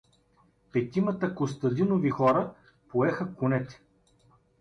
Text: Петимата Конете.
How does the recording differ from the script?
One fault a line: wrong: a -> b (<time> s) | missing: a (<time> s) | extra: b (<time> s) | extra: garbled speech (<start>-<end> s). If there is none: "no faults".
extra: Костадинови хора поеха (1.3 s)